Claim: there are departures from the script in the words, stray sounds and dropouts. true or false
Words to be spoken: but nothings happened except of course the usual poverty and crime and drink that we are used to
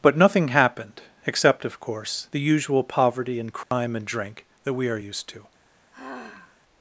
true